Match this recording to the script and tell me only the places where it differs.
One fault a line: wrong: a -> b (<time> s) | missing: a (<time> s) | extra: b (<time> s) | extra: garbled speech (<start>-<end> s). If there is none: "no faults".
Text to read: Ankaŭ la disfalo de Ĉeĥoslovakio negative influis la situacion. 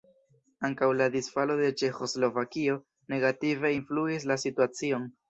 no faults